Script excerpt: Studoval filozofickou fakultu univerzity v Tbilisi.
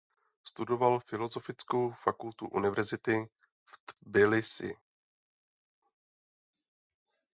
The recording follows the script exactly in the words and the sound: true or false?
true